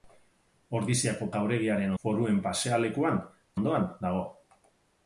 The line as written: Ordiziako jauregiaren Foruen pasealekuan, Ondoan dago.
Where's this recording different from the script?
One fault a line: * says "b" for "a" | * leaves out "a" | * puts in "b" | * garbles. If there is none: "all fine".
all fine